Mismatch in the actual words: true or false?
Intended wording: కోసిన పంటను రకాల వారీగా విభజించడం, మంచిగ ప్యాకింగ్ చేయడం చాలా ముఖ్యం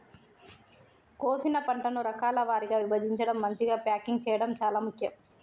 false